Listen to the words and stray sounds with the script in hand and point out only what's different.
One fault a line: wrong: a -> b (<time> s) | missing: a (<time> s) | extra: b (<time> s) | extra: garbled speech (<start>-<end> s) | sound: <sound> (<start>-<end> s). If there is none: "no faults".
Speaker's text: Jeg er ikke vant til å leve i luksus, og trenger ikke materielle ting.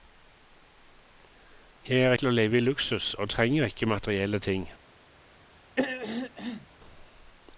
missing: ikke vant (2.1 s)
sound: throat clearing (5.8-6.7 s)